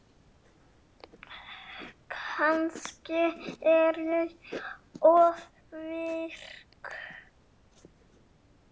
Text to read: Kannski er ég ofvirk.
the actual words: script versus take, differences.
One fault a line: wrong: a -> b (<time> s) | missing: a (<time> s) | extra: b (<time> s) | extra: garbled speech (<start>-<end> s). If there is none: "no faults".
no faults